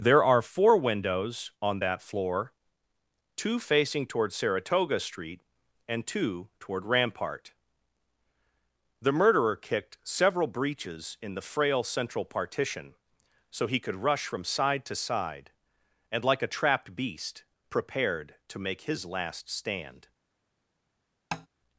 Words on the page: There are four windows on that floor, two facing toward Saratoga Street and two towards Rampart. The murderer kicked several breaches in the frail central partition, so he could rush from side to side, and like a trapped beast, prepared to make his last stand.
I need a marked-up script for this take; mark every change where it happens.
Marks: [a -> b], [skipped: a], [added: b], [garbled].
There are four windows on that floor, two facing toward Saratoga Street and two [towards -> toward] Rampart. The murderer kicked several breaches in the frail central partition, so he could rush from side to side, and like a trapped beast, prepared to make his last stand.